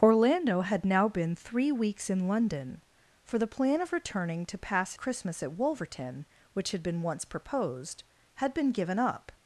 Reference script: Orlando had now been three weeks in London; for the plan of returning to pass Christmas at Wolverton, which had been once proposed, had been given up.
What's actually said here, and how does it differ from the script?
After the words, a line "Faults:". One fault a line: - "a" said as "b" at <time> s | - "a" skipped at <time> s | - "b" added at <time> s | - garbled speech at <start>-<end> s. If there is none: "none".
Orlando had now been three weeks in London; for the plan of returning to pass Christmas at Wolverton, which had been once proposed, had been given up.
Faults:
none